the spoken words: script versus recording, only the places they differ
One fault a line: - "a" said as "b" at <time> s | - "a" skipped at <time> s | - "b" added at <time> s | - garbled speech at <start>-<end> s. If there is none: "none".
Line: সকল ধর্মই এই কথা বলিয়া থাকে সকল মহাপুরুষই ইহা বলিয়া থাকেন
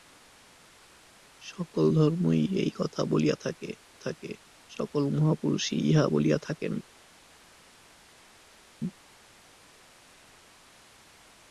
- "থাকে" added at 4.0 s